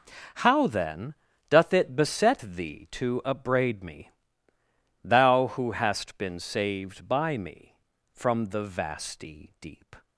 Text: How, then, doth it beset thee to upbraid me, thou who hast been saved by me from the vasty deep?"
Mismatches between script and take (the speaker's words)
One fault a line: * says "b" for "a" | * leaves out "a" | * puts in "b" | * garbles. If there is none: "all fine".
all fine